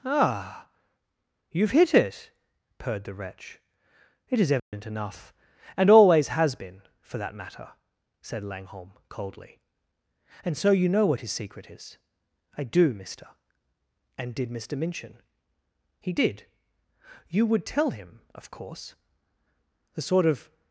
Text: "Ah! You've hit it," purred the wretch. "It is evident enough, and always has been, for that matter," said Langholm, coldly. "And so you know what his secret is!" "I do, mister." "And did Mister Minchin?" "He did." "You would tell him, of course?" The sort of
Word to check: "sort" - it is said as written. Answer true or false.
true